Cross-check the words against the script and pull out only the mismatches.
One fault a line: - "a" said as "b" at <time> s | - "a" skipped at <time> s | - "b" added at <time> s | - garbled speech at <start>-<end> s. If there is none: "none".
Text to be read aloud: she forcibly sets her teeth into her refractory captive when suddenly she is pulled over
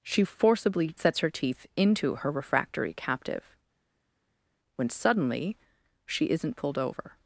- "is" said as "isn't" at 6.3 s